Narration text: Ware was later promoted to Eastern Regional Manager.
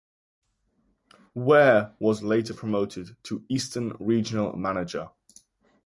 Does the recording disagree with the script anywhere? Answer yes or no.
no